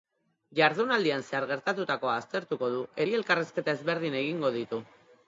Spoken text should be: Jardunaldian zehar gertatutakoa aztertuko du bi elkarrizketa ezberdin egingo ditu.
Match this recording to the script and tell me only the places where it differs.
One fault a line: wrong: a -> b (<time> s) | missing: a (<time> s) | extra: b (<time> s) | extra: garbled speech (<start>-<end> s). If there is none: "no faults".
no faults